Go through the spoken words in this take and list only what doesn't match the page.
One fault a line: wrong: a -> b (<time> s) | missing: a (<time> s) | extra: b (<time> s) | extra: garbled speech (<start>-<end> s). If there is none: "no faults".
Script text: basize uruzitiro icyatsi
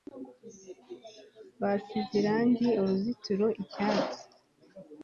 extra: irangi (2.2 s)